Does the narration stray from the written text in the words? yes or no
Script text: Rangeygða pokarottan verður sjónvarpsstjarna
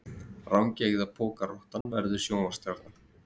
no